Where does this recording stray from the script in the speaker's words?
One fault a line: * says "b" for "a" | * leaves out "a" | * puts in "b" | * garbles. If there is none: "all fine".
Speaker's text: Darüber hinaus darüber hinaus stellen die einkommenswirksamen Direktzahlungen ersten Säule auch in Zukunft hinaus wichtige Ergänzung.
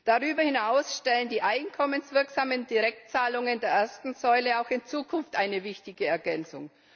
* leaves out "darüber hinaus"
* puts in "der"
* says "eine" for "hinaus"